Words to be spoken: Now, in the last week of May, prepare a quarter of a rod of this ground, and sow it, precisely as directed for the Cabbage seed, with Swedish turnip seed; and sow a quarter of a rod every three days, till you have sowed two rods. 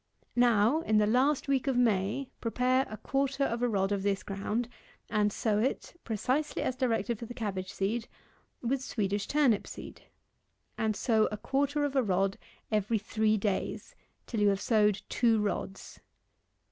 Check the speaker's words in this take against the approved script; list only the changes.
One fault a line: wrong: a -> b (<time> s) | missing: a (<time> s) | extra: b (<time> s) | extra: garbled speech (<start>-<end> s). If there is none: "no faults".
no faults